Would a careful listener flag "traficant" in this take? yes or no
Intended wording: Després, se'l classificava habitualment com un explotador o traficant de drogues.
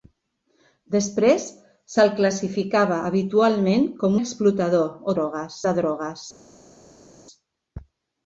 yes